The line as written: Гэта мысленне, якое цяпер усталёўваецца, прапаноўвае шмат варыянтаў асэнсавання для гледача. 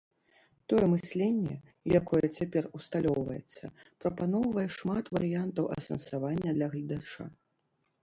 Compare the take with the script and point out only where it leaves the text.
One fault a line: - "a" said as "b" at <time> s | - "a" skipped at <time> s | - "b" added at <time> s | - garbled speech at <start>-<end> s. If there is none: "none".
- "Гэта" said as "Тое" at 0.7 s